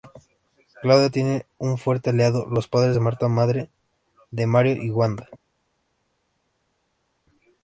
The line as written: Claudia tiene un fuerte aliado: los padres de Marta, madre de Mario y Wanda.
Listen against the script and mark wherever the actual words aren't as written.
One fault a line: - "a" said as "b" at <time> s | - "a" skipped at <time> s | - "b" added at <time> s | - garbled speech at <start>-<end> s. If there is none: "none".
none